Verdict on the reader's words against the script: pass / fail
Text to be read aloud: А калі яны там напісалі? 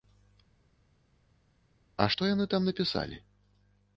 fail